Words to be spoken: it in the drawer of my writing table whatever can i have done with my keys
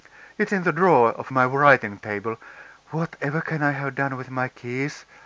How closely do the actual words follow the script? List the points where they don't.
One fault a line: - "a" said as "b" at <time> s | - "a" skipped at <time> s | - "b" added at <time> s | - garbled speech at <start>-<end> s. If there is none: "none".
none